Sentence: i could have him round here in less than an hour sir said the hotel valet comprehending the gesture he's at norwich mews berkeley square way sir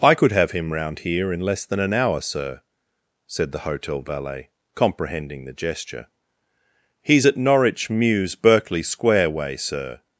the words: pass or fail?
pass